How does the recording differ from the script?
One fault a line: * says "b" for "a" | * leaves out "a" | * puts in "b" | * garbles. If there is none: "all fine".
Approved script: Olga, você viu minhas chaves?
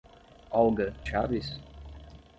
* leaves out "você viu minhas"